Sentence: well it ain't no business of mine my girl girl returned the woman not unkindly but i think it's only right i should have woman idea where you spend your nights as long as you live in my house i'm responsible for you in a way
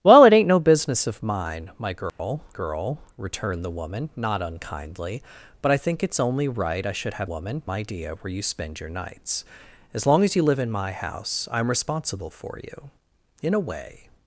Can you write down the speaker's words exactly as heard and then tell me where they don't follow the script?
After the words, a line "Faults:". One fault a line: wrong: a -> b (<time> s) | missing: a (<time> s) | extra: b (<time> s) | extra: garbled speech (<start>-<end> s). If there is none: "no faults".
well it ain't no business of mine my girl girl returned the woman not unkindly but i think it's only right i should have woman idea where you spend your nights as long as you live in my house i'm responsible for you in a way
Faults:
no faults